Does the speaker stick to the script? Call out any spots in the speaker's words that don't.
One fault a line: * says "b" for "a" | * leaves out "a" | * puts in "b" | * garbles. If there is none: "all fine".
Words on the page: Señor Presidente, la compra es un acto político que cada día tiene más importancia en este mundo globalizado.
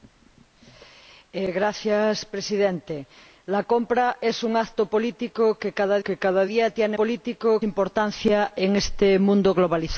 * puts in "que cada"
* says "político" for "más"